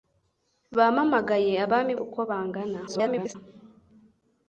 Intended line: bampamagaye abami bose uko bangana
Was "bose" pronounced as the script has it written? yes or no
no